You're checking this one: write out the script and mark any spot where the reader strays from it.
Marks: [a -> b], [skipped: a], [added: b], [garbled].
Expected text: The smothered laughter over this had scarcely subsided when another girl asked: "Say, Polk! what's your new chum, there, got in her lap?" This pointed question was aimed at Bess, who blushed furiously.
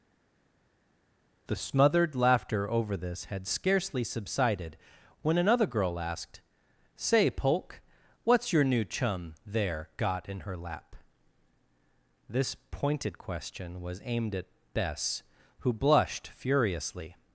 The smothered laughter over this had scarcely subsided when another girl asked: "Say, Polk! what's your new chum, there, got in her lap?" This pointed question was aimed at Bess, who blushed furiously.